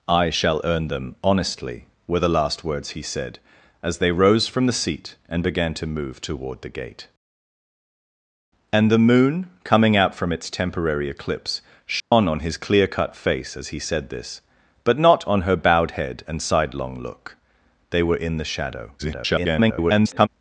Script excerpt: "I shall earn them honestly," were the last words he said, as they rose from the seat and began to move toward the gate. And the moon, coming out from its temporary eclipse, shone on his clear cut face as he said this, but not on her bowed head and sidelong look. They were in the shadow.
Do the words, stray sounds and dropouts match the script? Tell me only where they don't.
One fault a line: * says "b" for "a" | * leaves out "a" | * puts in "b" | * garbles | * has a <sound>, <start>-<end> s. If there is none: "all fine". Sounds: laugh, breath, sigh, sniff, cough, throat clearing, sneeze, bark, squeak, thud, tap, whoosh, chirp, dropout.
* has a dropout, 12.0-12.1 s
* garbles